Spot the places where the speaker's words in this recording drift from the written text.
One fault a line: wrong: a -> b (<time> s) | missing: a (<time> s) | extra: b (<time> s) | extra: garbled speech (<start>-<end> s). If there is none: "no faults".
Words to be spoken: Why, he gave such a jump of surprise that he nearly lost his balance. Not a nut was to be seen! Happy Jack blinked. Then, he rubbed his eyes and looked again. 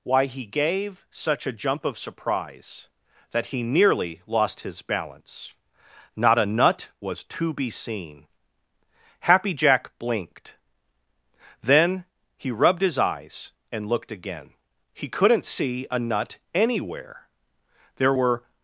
extra: He couldn't see a nut anywhere There were (14.9 s)